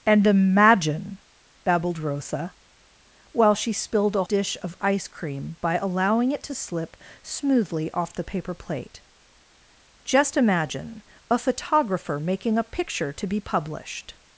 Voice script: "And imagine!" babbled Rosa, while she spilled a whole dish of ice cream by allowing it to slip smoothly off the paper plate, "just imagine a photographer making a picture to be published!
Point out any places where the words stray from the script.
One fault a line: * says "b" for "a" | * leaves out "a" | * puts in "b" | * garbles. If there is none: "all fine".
* leaves out "whole"